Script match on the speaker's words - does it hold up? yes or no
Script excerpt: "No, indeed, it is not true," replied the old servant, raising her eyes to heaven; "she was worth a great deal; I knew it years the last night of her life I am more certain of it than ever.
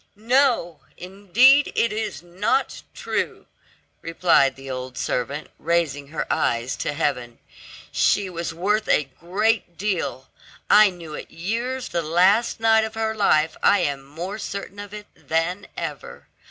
yes